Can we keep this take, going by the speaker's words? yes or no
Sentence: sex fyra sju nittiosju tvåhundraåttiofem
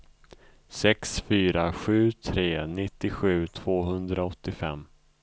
no